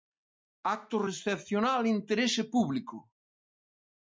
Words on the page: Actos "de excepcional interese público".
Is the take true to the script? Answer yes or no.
yes